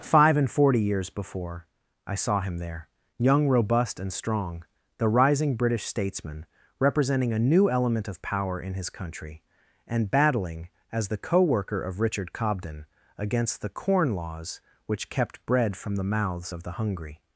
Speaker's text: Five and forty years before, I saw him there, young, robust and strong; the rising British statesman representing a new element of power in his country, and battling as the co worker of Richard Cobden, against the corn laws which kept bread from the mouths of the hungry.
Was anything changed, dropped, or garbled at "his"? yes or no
no